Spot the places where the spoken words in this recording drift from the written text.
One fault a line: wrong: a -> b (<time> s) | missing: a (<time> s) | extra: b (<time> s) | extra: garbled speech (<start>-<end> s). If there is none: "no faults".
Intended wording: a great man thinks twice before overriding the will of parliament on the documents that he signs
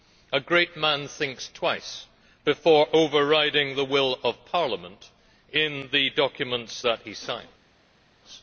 wrong: on -> in (5.5 s)